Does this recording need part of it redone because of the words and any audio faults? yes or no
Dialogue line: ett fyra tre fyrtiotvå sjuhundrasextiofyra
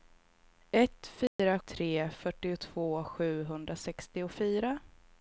yes